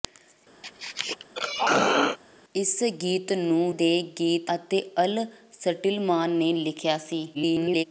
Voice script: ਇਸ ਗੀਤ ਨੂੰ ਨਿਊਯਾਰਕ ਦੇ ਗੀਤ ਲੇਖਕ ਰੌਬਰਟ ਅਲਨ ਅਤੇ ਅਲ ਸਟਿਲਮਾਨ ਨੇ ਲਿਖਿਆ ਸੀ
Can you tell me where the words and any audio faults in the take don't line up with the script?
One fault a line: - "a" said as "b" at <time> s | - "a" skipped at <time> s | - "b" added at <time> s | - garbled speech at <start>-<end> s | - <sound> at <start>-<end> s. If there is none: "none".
- throat clearing at 0.6-2.2 s
- "ਨਿਊਯਾਰਕ" skipped at 3.7 s
- "ਲੇਖਕ ਰੌਬਰਟ ਅਲਨ" skipped at 4.5 s
- garbled speech at 7.3-7.8 s